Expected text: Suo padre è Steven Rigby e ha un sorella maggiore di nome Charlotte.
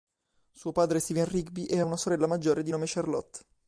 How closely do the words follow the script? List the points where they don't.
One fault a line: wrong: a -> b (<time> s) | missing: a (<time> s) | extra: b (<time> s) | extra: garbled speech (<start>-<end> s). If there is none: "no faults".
wrong: un -> una (1.8 s)